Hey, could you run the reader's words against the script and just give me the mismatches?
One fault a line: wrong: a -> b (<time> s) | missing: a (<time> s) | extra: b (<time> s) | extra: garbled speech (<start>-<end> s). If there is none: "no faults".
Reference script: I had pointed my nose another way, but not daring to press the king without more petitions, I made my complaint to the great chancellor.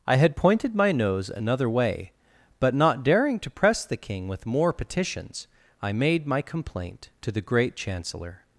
wrong: without -> with (4.3 s)